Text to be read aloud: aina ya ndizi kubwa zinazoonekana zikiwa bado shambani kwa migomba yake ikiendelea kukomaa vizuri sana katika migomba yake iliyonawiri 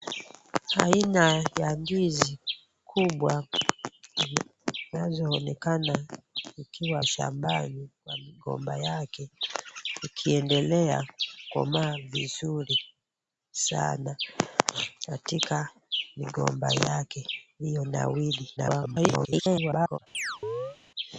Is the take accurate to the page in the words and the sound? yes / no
no